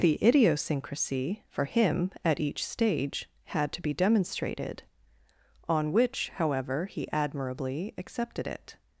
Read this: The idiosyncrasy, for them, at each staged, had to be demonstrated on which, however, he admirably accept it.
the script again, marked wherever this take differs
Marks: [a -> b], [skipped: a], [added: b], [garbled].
The idiosyncrasy, for [them, -> him] at each [staged, -> stage] had to be demonstrated on which, however, he admirably [accept -> accepted] it.